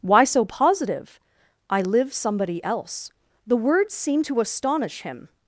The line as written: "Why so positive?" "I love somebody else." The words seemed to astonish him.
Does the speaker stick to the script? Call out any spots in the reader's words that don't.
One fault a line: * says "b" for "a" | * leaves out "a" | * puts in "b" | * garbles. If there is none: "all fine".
* says "live" for "love"